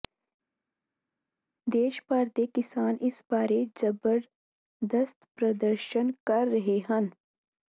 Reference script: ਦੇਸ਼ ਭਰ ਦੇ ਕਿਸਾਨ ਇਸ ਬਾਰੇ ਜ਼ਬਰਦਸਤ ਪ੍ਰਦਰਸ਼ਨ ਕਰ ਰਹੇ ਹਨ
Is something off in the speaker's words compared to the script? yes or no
no